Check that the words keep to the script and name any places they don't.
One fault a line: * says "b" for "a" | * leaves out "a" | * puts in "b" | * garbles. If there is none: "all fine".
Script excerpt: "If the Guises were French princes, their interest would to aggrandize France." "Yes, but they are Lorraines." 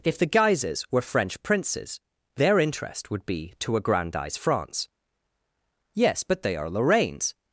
* puts in "be"